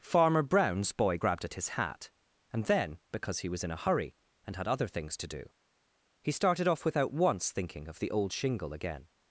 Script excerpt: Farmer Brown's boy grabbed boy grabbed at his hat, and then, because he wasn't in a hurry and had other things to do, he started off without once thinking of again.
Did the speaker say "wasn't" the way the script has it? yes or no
no